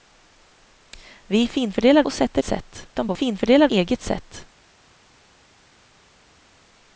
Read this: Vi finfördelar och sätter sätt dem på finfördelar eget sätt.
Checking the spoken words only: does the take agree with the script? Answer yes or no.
yes